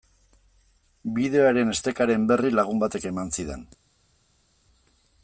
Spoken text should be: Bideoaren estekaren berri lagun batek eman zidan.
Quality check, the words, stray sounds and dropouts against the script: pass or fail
pass